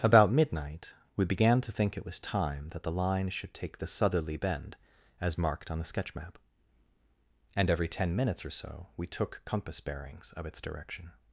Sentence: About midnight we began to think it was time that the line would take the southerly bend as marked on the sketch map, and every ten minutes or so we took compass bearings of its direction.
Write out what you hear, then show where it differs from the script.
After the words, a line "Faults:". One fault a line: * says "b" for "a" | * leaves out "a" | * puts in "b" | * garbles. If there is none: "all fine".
About midnight we began to think it was time that the line should take the southerly bend as marked on the sketch map, and every ten minutes or so we took compass bearings of its direction.
Faults:
* says "should" for "would"